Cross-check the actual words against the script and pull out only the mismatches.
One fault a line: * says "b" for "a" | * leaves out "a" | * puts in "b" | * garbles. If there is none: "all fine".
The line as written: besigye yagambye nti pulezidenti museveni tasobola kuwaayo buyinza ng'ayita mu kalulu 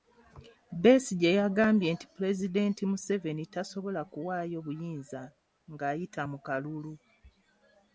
all fine